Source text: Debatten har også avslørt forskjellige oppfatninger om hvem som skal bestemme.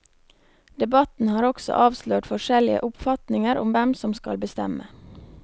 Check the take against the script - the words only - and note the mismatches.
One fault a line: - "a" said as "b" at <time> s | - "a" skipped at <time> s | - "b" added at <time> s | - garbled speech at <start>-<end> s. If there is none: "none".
none